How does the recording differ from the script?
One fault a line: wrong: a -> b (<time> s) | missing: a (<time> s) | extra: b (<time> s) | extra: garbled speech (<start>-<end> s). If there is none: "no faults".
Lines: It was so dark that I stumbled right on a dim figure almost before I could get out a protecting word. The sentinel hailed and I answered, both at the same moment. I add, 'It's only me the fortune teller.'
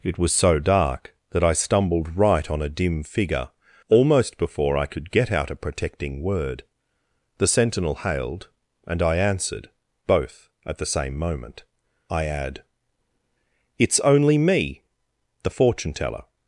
no faults